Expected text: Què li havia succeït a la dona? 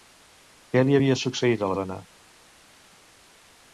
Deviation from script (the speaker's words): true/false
false